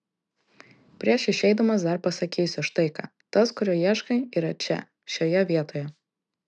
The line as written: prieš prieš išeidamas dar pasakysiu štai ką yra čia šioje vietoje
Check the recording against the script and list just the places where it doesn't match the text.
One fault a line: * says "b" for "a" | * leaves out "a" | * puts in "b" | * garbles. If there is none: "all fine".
* leaves out "prieš"
* puts in "tas kurio ieškai"